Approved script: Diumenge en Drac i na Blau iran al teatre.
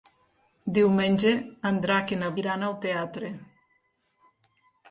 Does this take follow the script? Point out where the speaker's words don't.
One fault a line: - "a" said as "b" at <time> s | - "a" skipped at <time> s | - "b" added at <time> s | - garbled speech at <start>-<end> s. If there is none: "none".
- "Blau" skipped at 2.3 s